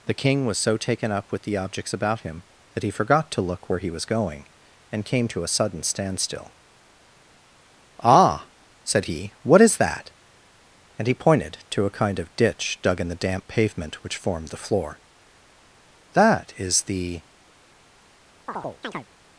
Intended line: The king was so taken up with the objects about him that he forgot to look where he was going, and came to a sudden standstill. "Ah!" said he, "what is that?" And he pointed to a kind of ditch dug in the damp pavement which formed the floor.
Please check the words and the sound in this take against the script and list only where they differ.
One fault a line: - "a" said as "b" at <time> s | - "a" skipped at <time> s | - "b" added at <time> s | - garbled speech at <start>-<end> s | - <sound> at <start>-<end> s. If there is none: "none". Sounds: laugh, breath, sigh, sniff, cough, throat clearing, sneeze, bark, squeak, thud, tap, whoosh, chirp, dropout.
- "That is the" added at 16.1 s
- chirp at 18.5-19.1 s